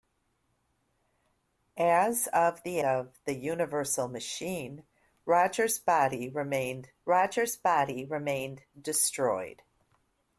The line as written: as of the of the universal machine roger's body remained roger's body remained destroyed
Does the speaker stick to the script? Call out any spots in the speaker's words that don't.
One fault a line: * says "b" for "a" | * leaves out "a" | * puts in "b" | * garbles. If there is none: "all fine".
all fine